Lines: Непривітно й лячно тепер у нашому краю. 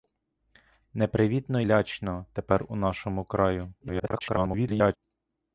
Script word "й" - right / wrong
wrong